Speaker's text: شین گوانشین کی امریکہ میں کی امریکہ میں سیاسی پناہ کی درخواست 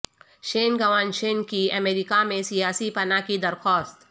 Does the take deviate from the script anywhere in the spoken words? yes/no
yes